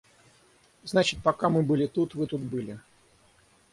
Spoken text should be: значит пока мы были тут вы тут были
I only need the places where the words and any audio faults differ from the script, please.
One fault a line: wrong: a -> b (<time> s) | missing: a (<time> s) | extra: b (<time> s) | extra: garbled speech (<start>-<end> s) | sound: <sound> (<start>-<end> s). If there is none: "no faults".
no faults